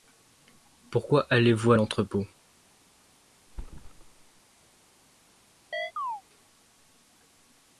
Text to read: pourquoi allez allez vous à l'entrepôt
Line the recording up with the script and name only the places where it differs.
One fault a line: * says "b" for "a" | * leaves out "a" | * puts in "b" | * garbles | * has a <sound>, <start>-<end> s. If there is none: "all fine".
* leaves out "allez"
* has a thud, 3.5-4.4 s
* has a chirp, 5.7-6.2 s